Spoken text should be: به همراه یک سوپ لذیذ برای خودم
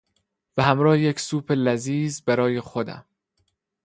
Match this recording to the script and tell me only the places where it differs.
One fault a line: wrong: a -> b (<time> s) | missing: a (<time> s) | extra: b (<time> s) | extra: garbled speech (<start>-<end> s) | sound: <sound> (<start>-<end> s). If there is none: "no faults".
no faults